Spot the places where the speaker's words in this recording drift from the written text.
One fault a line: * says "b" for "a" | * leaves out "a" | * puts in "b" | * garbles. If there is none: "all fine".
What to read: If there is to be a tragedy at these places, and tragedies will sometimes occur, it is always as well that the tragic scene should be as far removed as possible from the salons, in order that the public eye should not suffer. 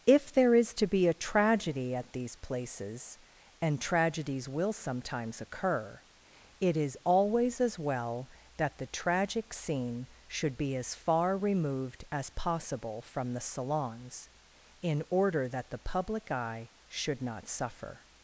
all fine